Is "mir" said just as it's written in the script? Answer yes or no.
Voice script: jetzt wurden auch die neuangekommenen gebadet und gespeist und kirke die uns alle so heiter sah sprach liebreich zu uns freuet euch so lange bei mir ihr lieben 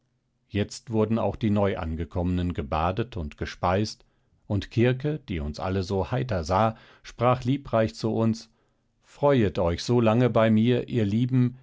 yes